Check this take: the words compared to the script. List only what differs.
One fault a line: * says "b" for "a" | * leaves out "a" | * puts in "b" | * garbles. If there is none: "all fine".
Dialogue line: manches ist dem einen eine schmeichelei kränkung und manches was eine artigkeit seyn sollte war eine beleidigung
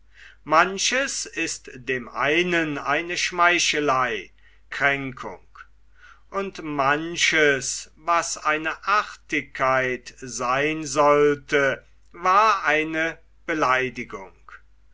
all fine